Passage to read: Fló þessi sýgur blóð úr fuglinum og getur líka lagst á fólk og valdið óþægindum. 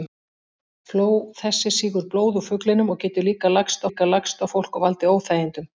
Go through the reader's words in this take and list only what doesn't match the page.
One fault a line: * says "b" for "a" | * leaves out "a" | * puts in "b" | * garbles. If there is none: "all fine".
* puts in "líka lagst"